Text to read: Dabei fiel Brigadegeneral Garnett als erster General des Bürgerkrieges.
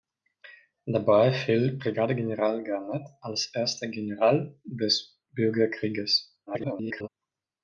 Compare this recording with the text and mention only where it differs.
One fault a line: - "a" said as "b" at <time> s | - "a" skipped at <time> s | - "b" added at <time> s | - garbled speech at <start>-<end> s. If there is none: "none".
- garbled speech at 6.5-7.1 s